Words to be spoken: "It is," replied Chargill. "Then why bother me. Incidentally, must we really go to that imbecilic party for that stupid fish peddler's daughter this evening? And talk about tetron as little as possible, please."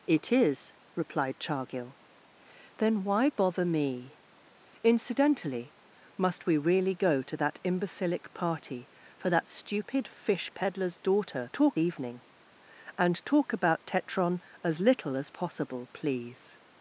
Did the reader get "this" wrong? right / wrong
wrong